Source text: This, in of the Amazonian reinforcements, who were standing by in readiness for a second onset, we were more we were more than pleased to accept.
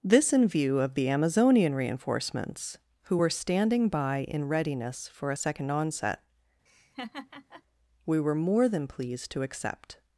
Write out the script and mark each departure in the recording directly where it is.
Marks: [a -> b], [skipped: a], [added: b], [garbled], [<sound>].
This, in [added: view] of the Amazonian reinforcements, who were standing by in readiness for a second onset, [laugh] we were more [skipped: we were more] than pleased to accept.